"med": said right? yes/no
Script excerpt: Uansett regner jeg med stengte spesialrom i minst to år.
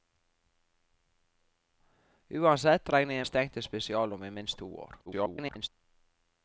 no